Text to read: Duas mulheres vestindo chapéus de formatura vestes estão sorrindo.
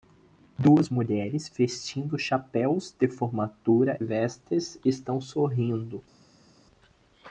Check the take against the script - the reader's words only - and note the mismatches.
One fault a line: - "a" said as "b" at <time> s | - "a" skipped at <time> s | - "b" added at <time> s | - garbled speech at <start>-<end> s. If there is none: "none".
none